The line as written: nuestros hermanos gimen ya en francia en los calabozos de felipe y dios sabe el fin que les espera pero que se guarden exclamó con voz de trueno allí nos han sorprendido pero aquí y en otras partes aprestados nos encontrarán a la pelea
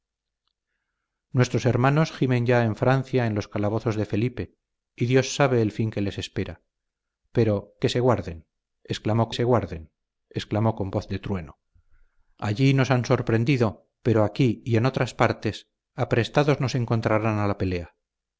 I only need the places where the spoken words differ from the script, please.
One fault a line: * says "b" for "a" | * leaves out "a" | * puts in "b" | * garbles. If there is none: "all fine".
* puts in "se guarden exclamó"